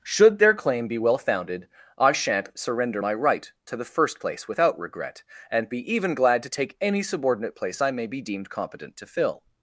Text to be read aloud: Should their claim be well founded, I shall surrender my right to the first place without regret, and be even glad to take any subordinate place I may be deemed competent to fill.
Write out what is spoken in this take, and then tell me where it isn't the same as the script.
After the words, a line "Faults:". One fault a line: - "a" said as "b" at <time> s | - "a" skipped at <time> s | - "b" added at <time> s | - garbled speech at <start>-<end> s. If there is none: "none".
Should their claim be well founded, I shan't surrender my right to the first place without regret, and be even glad to take any subordinate place I may be deemed competent to fill.
Faults:
- "shall" said as "shan't" at 2.1 s